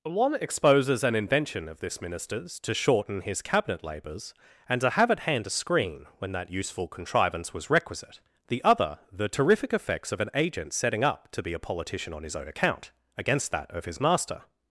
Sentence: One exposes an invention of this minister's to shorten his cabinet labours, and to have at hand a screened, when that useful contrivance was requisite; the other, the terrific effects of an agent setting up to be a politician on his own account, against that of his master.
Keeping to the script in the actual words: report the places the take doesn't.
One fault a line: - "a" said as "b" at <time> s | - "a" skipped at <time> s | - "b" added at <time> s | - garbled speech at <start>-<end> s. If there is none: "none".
- "screened" said as "screen" at 5.5 s